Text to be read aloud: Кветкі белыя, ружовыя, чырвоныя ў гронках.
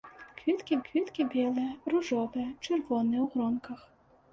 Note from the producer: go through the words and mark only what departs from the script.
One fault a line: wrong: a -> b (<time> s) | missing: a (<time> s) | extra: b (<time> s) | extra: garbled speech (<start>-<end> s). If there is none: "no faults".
extra: кветкі (0.8 s)